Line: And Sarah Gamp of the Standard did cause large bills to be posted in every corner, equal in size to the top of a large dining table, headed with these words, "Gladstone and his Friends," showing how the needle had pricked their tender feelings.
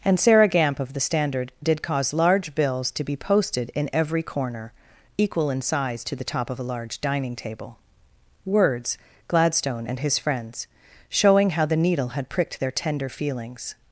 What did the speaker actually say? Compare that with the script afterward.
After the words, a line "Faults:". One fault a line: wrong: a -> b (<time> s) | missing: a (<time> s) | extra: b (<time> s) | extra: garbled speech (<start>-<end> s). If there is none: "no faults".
And Sarah Gamp of the Standard did cause large bills to be posted in every corner, equal in size to the top of a large dining table, words, "Gladstone and his Friends," showing how the needle had pricked their tender feelings.
Faults:
missing: headed with these (7.8 s)